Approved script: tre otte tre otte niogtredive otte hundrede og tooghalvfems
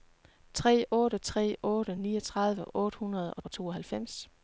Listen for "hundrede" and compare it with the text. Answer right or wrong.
right